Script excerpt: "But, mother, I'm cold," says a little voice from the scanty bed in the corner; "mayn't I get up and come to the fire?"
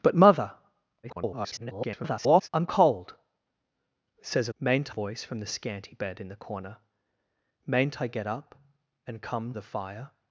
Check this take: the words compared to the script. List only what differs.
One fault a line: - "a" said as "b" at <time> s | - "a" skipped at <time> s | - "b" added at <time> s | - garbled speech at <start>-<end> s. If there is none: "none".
- garbled speech at 1.0-2.5 s
- "little" said as "mayn't" at 4.6 s
- "to" skipped at 9.5 s